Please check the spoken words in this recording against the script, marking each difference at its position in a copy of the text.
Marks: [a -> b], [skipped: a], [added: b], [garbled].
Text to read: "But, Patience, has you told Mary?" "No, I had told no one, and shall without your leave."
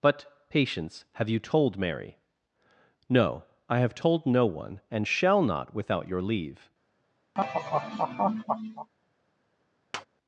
"But, Patience, [has -> have] you told Mary?" "No, I [had -> have] told no one, and shall [added: not] without your leave."